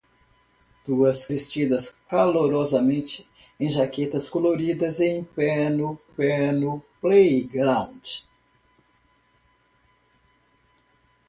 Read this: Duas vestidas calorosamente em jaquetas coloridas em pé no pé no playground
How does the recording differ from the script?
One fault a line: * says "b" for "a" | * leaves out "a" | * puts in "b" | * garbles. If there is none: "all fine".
all fine